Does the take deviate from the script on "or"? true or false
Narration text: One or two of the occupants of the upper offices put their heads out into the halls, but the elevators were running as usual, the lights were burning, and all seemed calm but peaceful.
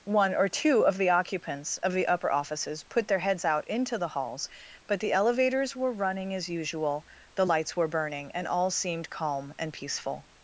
false